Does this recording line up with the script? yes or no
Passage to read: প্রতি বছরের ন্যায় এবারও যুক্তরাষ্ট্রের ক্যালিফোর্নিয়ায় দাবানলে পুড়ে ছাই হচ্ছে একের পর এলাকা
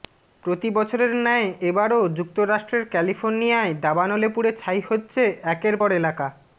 yes